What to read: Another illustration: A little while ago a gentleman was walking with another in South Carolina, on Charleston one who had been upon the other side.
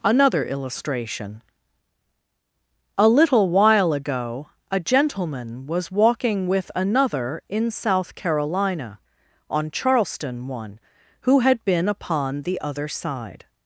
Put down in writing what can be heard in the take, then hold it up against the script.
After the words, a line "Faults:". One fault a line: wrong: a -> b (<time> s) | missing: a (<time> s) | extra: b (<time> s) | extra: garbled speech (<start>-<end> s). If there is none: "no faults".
Another illustration: A little while ago a gentleman was walking with another in South Carolina, on Charleston one who had been upon the other side.
Faults:
no faults